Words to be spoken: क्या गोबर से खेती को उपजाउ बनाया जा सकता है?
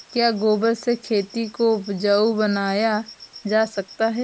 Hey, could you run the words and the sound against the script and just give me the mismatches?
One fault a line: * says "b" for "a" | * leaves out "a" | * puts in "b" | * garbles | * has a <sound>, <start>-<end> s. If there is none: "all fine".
all fine